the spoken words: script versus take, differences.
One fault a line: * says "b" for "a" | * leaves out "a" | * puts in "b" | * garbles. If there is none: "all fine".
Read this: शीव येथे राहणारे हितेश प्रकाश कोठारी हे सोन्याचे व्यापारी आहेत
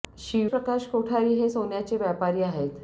* leaves out "येथे राहणारे हितेश"